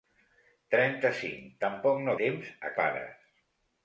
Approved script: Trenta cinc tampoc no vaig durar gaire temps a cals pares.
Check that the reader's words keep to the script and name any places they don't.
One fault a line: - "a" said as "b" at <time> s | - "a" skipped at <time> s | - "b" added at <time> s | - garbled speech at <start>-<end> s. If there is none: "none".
- "vaig durar gaire" skipped at 2.2 s
- "cals" skipped at 2.8 s